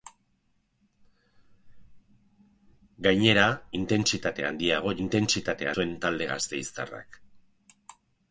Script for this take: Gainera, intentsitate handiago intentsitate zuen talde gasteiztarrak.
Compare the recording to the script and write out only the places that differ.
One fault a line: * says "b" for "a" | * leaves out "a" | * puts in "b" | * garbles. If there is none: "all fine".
all fine